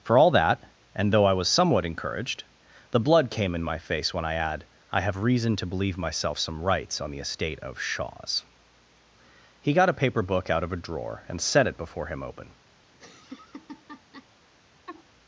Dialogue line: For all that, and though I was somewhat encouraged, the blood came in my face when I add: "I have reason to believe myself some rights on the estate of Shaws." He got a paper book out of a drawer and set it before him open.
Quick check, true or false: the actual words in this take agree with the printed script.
true